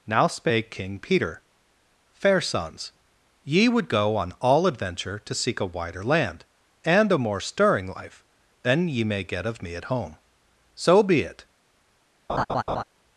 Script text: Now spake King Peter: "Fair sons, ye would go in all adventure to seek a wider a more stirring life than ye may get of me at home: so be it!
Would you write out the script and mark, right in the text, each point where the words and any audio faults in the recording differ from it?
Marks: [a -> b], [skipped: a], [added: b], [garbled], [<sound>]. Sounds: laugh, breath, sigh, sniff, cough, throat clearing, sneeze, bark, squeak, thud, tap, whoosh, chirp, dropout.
Now spake King Peter: "Fair sons, ye would go [in -> on] all adventure to seek a wider [added: land and] a more stirring life than ye may get of me at home: so be it! [laugh]